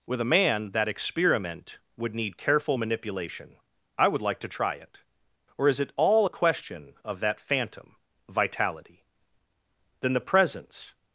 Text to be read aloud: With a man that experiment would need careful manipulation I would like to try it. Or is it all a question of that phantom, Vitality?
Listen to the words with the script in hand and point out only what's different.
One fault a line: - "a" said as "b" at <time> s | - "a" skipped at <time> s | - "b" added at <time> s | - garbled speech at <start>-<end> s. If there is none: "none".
- "Then the presence" added at 10.0 s